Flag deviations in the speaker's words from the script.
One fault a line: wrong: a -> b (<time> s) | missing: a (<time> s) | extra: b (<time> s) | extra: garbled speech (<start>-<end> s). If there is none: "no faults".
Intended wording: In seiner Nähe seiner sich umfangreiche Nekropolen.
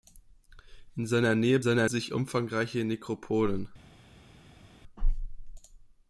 no faults